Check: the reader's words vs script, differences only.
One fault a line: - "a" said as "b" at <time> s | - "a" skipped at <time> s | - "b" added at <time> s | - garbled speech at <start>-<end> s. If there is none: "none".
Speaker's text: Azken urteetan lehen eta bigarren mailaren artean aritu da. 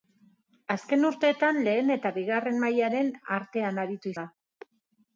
none